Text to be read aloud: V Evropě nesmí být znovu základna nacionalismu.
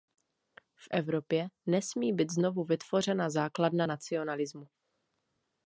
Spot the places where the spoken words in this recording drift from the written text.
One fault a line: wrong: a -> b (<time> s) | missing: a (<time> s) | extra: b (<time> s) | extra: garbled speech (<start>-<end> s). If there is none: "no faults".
extra: vytvořena (2.6 s)